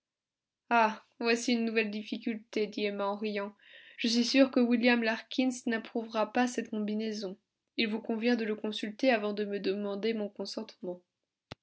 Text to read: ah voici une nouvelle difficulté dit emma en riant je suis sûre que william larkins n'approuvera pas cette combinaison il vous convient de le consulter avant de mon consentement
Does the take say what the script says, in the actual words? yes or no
no